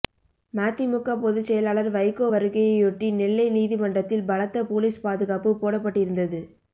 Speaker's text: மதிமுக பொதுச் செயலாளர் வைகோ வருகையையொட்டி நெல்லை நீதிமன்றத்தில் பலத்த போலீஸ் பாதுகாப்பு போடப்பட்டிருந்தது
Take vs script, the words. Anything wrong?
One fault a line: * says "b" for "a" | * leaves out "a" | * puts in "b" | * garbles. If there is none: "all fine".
all fine